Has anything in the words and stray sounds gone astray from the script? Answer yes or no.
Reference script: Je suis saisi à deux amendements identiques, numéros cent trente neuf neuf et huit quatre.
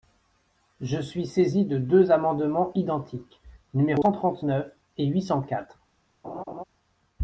yes